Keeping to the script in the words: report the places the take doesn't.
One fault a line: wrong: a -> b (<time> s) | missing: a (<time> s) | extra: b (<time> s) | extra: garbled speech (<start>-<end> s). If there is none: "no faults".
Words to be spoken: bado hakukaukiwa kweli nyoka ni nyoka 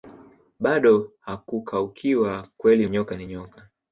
no faults